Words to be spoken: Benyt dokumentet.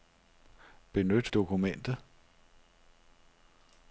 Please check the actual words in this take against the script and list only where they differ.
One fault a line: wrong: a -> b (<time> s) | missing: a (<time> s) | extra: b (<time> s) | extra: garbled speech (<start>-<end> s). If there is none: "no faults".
no faults